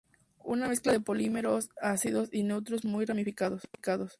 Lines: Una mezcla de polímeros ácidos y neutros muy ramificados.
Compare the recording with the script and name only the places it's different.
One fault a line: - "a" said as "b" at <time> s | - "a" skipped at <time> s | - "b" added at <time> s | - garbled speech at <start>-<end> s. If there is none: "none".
none